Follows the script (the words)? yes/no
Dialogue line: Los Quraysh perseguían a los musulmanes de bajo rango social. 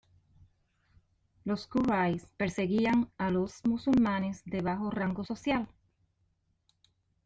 yes